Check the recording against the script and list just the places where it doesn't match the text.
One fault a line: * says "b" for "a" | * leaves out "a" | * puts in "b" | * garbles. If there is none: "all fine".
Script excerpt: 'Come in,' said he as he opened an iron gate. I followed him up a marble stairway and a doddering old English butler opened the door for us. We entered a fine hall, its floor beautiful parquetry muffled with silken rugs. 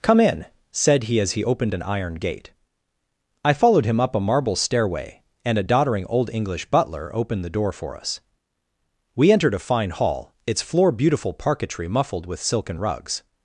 all fine